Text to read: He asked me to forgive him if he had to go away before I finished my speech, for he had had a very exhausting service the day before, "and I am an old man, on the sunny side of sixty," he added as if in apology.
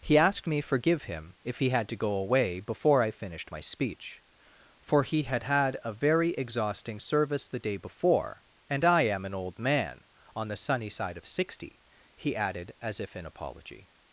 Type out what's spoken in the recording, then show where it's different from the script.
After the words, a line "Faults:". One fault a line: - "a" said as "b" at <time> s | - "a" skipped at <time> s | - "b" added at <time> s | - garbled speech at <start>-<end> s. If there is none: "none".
He asked me forgive him if he had to go away before I finished my speech, for he had had a very exhausting service the day before, "and I am an old man, on the sunny side of sixty," he added as if in apology.
Faults:
- "to" skipped at 0.6 s